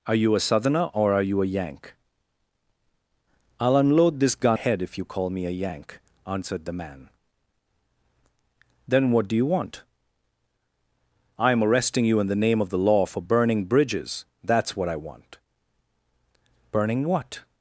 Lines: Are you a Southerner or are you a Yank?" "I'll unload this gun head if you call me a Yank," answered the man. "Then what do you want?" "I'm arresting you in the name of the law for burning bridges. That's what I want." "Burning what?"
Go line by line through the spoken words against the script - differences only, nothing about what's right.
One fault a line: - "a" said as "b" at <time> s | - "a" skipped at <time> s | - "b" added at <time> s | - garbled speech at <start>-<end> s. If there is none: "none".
none